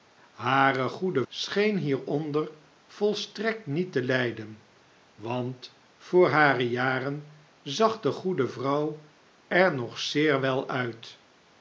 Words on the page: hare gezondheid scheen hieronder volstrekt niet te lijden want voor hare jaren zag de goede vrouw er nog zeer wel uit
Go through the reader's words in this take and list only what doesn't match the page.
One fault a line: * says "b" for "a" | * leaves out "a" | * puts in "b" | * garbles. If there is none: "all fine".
* says "goede" for "gezondheid"